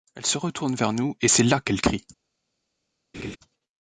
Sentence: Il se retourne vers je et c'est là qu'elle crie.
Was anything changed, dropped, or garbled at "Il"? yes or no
yes